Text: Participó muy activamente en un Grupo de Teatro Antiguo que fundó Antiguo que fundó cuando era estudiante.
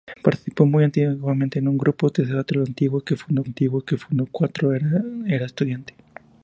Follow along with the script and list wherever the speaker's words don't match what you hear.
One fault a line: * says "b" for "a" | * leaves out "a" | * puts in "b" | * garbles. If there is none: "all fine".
all fine